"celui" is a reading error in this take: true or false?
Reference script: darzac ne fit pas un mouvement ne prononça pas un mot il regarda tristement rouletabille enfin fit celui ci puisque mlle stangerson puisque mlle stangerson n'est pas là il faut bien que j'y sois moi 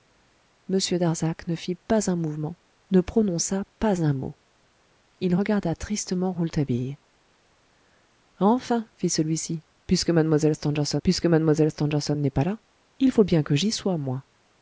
false